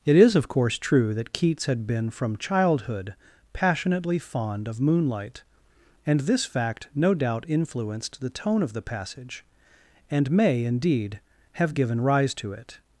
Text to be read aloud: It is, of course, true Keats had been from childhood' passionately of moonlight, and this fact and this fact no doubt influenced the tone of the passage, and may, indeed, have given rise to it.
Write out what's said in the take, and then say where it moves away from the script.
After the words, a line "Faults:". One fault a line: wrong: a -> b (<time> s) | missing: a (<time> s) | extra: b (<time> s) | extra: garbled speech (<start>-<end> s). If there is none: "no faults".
It is, of course, true that Keats had been from childhood' passionately fond of moonlight, and this fact no doubt influenced the tone of the passage, and may, indeed, have given rise to it.
Faults:
extra: that (1.1 s)
extra: fond (4.2 s)
missing: and this fact (6.9 s)